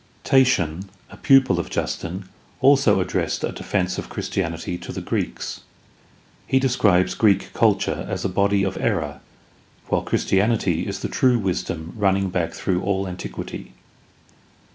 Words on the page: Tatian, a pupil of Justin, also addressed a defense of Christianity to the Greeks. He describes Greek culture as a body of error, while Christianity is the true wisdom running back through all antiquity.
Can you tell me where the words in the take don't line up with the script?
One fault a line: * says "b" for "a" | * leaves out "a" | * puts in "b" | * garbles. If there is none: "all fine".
all fine